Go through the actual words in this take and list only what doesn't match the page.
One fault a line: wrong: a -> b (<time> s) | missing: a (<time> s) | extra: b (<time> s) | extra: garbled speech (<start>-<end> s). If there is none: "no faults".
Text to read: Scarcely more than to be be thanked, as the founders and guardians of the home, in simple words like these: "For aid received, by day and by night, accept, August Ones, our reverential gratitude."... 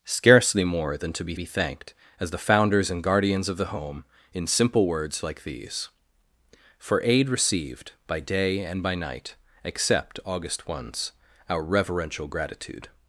no faults